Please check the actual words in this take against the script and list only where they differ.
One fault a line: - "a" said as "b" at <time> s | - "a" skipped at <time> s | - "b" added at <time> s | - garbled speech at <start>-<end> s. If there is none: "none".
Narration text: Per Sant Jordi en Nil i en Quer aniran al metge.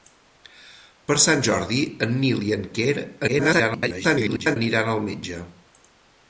- garbled speech at 3.3-4.6 s